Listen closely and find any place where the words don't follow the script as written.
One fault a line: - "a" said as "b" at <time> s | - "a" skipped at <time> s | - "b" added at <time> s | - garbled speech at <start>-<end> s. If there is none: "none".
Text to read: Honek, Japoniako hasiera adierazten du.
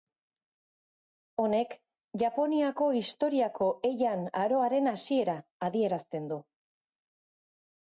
- "historiako Heian aroaren" added at 3.0 s